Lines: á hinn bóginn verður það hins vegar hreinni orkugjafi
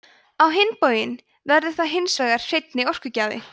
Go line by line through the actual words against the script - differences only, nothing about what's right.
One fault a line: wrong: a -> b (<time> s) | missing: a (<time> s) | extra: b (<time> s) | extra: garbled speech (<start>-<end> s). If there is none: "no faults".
no faults